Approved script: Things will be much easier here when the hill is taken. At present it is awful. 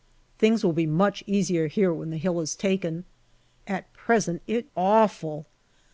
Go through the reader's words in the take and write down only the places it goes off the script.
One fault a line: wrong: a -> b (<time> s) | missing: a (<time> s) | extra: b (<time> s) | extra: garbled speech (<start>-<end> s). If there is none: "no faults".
missing: is (4.7 s)